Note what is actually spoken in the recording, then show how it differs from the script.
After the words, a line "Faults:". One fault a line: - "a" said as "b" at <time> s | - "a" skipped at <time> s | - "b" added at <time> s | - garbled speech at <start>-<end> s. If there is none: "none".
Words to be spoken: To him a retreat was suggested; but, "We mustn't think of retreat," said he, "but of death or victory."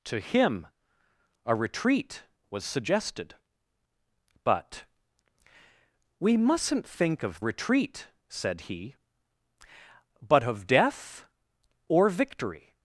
To him a retreat was suggested; but, "We mustn't think of retreat," said he, "but of death or victory."
Faults:
none